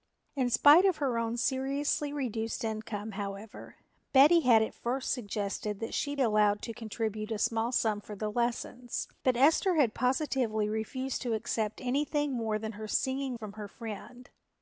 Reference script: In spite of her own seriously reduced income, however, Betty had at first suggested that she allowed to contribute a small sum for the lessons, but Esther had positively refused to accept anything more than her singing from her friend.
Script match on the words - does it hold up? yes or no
yes